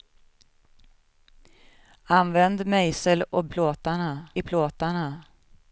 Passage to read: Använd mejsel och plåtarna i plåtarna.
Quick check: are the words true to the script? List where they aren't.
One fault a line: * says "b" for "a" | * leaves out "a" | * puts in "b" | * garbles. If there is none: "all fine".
all fine